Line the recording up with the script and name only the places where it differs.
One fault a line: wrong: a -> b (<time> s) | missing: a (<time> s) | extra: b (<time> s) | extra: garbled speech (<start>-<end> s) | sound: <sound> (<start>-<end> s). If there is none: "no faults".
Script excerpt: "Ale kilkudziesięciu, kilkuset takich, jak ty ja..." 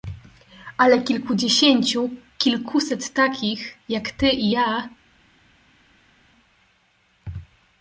extra: i (4.3 s)